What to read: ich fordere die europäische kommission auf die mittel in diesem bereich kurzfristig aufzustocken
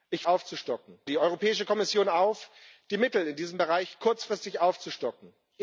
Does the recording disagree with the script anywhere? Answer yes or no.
yes